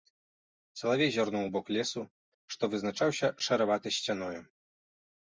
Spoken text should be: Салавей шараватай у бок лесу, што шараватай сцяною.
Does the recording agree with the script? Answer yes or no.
no